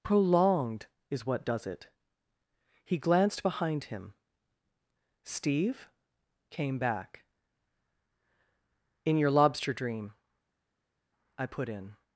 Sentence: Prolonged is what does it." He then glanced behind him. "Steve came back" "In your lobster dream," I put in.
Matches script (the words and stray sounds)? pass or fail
fail